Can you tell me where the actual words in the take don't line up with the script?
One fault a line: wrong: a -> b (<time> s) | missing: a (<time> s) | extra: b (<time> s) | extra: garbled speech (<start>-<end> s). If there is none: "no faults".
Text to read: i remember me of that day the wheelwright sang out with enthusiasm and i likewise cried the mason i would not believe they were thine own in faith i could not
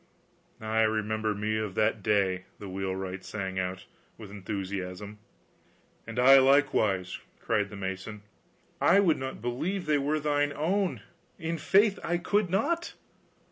no faults